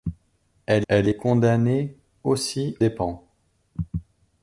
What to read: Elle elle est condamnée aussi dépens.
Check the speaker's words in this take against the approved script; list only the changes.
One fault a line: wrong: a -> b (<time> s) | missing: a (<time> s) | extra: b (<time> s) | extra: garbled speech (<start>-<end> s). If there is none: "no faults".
no faults